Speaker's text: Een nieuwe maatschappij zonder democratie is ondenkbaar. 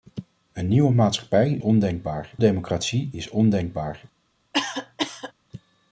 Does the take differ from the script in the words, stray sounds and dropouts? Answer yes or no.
yes